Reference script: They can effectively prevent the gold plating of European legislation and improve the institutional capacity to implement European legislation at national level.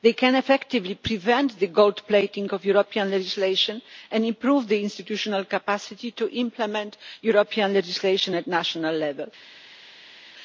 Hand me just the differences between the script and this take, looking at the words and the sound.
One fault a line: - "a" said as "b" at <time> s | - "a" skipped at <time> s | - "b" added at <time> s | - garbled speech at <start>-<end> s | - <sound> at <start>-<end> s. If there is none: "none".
none